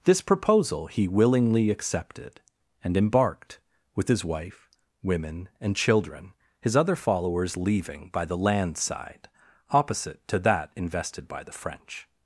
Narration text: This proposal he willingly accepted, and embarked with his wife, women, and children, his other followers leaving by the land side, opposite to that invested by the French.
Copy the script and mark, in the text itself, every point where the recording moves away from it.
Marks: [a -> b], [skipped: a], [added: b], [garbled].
This proposal he willingly accepted, and embarked with his wife, women, and children, his other followers leaving by the land side, opposite to that invested by the French.